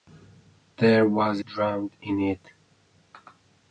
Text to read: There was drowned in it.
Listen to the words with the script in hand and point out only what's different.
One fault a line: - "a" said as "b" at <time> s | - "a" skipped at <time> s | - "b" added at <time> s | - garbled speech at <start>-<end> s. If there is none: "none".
none